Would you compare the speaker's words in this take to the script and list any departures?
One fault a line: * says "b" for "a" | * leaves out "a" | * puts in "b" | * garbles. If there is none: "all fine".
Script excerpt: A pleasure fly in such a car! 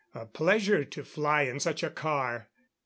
* puts in "to"